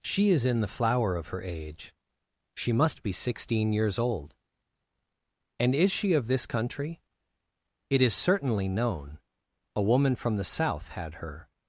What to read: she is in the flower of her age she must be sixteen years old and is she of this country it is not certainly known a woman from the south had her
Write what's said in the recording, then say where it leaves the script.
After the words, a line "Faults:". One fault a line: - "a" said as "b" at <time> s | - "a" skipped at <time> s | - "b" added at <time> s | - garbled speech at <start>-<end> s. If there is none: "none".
she is in the flower of her age she must be sixteen years old and is she of this country it is certainly known a woman from the south had her
Faults:
- "not" skipped at 8.1 s